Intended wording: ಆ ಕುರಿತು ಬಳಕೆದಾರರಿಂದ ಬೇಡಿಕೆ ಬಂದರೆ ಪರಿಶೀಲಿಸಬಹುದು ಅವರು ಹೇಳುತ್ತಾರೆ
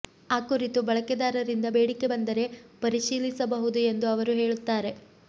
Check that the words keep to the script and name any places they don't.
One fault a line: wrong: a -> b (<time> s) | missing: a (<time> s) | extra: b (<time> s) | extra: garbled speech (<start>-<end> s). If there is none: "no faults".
extra: ಎಂದು (3.9 s)